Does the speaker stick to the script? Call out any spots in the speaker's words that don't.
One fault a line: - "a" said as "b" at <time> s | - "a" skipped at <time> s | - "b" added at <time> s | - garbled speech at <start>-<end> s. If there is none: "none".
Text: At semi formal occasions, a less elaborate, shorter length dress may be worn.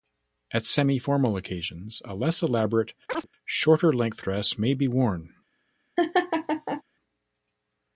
none